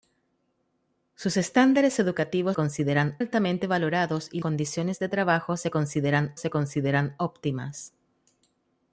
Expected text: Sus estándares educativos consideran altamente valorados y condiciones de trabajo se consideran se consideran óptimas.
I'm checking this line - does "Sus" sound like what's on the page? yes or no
yes